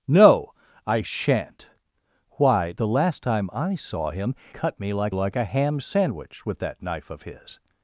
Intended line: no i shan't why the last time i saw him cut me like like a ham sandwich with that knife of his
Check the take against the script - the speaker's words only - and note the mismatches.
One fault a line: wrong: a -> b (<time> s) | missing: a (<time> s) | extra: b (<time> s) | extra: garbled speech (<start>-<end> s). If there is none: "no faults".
no faults